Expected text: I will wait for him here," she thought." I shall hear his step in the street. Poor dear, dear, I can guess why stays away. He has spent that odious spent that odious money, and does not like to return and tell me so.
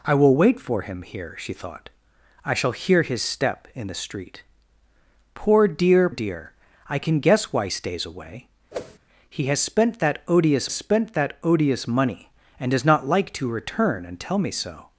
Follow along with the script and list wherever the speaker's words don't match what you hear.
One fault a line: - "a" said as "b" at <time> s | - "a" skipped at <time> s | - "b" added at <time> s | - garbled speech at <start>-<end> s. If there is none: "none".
none